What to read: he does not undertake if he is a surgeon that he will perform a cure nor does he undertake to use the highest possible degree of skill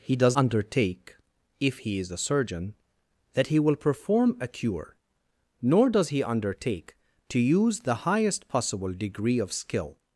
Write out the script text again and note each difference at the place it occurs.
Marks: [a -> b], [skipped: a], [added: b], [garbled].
he does [skipped: not] undertake if he is a surgeon that he will perform a cure nor does he undertake to use the highest possible degree of skill